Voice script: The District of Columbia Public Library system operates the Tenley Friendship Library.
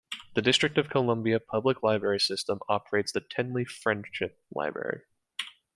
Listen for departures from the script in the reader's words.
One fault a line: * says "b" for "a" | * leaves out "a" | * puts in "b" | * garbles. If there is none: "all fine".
all fine